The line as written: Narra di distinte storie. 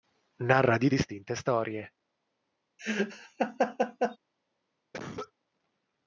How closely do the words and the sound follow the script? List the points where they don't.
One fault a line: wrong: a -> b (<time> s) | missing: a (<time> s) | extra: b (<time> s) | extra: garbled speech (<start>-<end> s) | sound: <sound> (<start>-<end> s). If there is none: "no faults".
sound: laugh (2.8-4.2 s)
sound: cough (4.9-5.3 s)